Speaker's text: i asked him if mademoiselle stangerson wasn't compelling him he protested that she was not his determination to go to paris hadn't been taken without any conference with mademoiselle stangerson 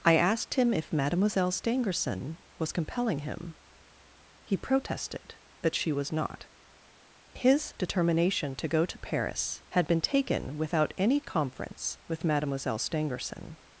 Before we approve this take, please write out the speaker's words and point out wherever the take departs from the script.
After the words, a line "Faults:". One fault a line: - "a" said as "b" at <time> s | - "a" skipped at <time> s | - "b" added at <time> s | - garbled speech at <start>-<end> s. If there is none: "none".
i asked him if mademoiselle stangerson was compelling him he protested that she was not his determination to go to paris had been taken without any conference with mademoiselle stangerson
Faults:
- "wasn't" said as "was" at 2.6 s
- "hadn't" said as "had" at 9.7 s